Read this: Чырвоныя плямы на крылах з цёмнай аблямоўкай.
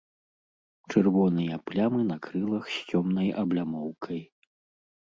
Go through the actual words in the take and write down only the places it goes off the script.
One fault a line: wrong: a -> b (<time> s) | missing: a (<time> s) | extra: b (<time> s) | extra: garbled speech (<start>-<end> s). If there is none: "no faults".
no faults